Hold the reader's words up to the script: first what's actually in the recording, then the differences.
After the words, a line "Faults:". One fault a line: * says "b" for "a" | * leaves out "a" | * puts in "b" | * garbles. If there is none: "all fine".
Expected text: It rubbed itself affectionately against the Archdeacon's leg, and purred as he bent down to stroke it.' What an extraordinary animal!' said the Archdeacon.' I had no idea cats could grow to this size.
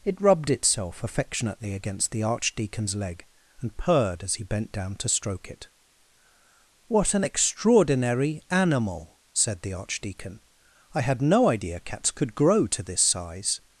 It rubbed itself affectionately against the Archdeacon's leg, and purred as he bent down to stroke it.' What an extraordinary animal!' said the Archdeacon.' I had no idea cats could grow to this size.
Faults:
all fine